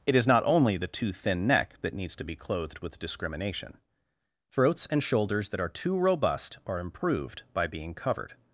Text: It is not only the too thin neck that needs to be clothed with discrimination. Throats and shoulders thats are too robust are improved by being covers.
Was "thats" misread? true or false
true